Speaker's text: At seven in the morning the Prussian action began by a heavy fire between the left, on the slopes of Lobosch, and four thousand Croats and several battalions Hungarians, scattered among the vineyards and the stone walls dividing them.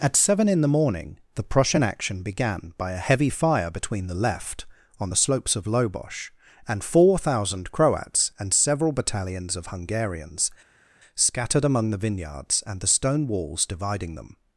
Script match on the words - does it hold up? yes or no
no